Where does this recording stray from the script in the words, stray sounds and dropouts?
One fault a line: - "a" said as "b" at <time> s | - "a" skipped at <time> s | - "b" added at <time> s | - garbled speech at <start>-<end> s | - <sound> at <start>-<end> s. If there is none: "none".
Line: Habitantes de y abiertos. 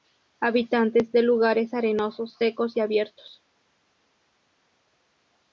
- "lugares arenosos secos" added at 1.2 s